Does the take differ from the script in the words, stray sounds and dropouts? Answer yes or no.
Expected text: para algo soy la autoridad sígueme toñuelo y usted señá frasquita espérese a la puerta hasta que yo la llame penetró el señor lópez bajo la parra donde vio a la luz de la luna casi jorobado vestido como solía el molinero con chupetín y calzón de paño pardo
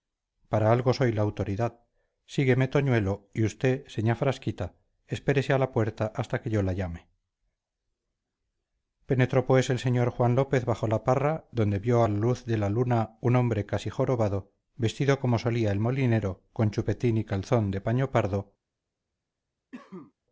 yes